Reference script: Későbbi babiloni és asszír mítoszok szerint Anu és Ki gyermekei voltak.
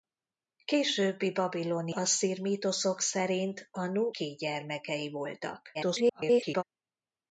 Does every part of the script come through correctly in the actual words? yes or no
no